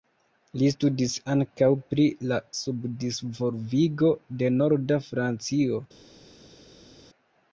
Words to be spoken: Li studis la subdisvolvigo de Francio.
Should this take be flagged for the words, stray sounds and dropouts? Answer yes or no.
yes